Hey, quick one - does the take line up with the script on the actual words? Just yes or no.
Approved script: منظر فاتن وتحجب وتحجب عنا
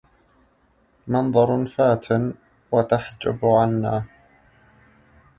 no